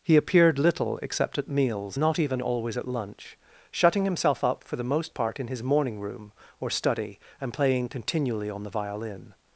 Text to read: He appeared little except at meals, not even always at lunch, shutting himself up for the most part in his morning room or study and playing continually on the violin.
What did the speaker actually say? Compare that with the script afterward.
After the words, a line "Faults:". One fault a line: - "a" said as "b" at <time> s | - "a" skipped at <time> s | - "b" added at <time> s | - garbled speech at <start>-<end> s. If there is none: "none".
He appeared little except at meals, not even always at lunch, shutting himself up for the most part in his morning room or study and playing continually on the violin.
Faults:
none